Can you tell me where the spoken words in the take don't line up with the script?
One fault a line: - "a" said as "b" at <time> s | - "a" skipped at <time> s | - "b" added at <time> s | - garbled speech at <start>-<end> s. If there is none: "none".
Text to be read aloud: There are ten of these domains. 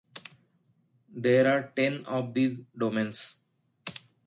none